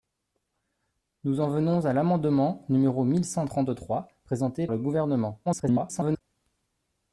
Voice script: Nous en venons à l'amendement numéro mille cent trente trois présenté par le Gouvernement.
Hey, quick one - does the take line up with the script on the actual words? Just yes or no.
no